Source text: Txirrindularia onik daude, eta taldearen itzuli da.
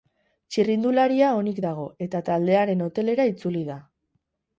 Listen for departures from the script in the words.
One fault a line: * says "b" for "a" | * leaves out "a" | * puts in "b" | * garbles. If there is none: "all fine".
* says "dago" for "daude"
* puts in "hotelera"